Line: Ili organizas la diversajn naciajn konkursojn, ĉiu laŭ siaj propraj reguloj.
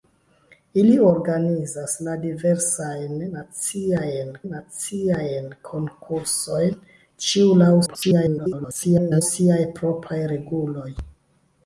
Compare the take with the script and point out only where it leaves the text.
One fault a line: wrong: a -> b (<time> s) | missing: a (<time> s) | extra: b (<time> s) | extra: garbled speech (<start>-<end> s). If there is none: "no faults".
extra: naciajn (4.5 s)
extra: garbled speech (7.9-9.2 s)